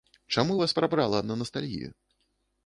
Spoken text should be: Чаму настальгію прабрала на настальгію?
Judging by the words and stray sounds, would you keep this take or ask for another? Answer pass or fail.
fail